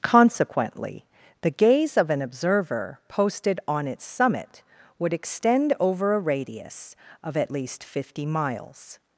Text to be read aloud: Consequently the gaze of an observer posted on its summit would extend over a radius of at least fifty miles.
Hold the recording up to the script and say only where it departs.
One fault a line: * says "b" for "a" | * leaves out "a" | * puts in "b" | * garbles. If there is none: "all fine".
all fine